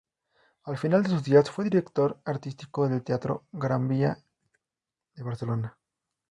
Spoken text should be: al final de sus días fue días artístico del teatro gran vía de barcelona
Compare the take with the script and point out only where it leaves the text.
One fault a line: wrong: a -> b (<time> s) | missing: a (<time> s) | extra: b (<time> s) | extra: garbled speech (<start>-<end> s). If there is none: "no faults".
wrong: días -> director (1.6 s)